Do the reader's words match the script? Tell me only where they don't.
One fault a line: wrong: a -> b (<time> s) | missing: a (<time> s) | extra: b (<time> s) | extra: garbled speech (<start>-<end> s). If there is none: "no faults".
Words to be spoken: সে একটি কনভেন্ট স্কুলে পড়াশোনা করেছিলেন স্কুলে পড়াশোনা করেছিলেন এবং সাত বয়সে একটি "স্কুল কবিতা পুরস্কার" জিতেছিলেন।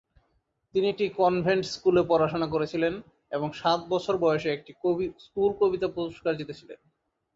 wrong: সে -> তিনি (0.8 s)
missing: স্কুলে পড়াশোনা করেছিলেন (2.9 s)
extra: বছর (3.9 s)